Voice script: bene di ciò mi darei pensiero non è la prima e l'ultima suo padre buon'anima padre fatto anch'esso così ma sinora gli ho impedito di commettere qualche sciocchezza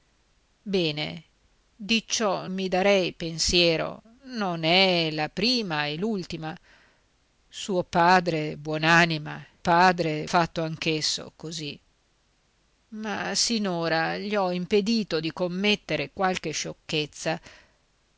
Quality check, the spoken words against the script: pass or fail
pass